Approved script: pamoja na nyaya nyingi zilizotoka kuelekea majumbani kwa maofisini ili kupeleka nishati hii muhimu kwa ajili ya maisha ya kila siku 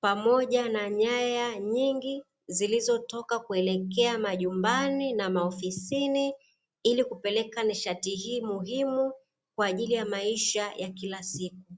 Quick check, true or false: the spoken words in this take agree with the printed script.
false